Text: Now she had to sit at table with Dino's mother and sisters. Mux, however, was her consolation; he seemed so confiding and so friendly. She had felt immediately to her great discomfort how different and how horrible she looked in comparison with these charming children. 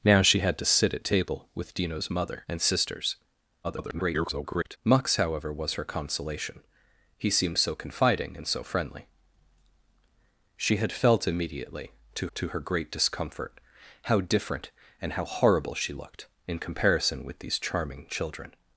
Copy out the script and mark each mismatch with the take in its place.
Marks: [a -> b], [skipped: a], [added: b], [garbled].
Now she had to sit at table with Dino's mother and sisters. [garbled] Mux, however, was her consolation; he seemed so confiding and so friendly. She had felt immediately to [added: to] her great discomfort how different and how horrible she looked in comparison with these charming children.